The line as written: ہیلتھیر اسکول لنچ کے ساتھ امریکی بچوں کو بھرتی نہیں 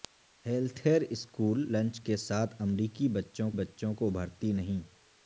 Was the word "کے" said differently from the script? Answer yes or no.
no